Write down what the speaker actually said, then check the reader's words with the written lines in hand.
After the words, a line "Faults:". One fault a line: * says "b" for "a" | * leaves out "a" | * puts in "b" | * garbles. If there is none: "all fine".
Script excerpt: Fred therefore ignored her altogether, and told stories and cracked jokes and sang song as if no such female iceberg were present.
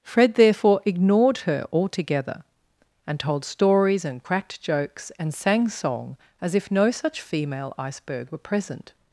Fred therefore ignored her altogether, and told stories and cracked jokes and sang song as if no such female iceberg were present.
Faults:
all fine